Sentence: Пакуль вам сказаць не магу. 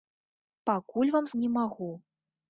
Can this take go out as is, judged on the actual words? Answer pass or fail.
fail